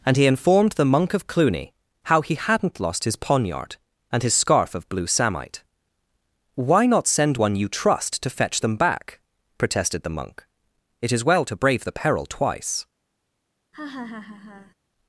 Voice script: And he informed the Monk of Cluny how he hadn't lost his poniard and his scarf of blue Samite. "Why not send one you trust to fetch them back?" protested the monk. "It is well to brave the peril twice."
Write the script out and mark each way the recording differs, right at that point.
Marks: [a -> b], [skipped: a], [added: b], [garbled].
And he informed the Monk of Cluny how he hadn't lost his poniard and his scarf of blue Samite. "Why not send one you trust to fetch them back?" protested the monk. "It is well to brave the peril twice."